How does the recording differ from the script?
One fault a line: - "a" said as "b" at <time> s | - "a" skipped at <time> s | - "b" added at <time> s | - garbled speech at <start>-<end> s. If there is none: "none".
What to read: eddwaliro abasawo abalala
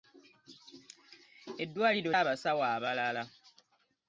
none